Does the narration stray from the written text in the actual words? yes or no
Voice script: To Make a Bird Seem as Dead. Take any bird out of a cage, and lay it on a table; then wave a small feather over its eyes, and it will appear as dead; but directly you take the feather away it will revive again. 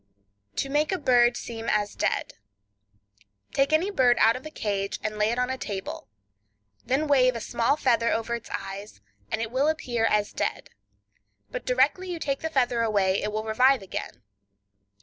no